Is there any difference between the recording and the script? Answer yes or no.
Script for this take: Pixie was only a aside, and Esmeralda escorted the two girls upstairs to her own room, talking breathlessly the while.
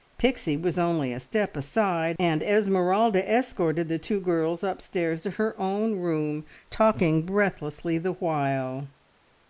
yes